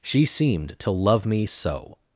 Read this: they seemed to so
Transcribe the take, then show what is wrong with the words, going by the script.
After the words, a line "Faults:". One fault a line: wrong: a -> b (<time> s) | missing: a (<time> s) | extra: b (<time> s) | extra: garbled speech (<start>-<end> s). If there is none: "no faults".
she seemed to love me so
Faults:
wrong: they -> she (0.0 s)
extra: love me (0.9 s)